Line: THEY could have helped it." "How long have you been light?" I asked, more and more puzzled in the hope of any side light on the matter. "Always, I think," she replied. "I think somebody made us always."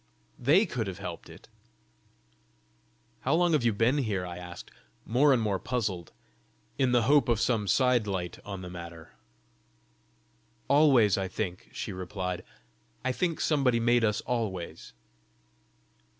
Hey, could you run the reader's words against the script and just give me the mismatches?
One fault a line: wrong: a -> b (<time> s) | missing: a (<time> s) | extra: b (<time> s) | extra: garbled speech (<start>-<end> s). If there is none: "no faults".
wrong: light -> here (4.0 s)
wrong: any -> some (7.4 s)